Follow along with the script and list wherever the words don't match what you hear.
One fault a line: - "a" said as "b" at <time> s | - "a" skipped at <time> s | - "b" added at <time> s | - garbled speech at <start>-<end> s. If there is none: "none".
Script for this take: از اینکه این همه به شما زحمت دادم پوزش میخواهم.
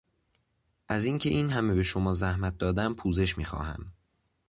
none